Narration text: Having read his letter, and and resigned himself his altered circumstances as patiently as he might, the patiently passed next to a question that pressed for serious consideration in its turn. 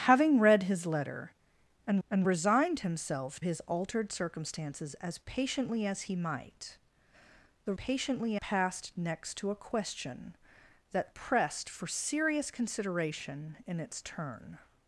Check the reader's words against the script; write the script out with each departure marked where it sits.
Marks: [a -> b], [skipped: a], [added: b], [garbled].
Having read his letter, and and resigned himself his altered circumstances as patiently as he might, the patiently passed next to a question that pressed for serious consideration in its turn.